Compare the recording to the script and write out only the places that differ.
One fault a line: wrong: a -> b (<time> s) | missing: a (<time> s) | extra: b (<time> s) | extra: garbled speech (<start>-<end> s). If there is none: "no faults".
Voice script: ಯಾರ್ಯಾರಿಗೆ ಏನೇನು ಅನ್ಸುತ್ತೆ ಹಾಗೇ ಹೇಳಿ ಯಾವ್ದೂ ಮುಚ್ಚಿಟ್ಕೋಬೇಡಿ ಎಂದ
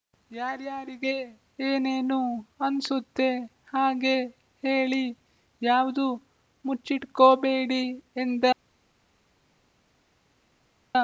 no faults